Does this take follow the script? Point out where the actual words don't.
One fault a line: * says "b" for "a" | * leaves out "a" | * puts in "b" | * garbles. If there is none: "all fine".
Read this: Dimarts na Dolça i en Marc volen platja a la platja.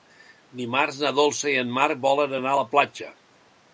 * says "anar" for "platja"